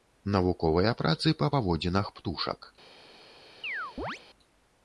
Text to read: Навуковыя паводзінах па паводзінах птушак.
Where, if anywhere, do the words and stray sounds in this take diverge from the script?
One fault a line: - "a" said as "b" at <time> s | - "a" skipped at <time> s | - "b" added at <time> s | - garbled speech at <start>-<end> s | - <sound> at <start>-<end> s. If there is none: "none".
- "паводзінах" said as "працы" at 1.0 s
- chirp at 3.6-4.2 s